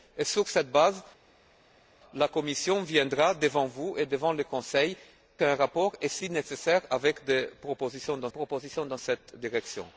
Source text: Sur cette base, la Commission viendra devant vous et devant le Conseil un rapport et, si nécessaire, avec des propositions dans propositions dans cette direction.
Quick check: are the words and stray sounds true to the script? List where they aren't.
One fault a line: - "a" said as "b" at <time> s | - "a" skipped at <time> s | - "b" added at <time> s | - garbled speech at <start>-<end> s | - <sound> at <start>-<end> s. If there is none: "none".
none